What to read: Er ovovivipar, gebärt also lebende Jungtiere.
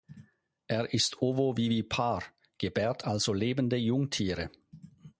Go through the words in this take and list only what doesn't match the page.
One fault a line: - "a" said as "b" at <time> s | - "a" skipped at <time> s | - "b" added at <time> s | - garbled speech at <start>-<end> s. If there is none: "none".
- "ist" added at 0.9 s